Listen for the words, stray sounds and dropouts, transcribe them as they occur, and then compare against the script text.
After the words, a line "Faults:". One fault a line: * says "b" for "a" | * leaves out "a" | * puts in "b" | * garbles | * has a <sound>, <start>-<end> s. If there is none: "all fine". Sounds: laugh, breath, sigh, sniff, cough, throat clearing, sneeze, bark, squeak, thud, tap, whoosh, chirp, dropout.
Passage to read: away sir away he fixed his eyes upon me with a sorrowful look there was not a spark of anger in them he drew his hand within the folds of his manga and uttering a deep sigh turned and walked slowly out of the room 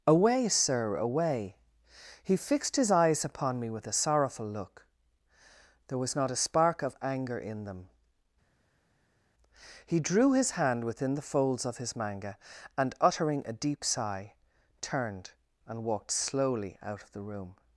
away sir away he fixed his eyes upon me with a sorrowful look there was not a spark of anger in them he drew his hand within the folds of his manga and uttering a deep sigh turned and walked slowly out of the room
Faults:
all fine